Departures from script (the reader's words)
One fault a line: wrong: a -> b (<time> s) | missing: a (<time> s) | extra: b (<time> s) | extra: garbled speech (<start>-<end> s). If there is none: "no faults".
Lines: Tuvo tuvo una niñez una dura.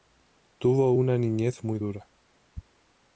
missing: tuvo (0.9 s)
wrong: una -> muy (1.6 s)